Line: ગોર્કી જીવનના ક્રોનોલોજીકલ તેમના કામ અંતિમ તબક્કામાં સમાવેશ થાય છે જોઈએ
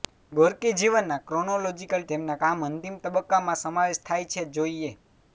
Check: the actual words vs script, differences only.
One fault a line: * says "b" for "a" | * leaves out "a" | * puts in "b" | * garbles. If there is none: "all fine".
all fine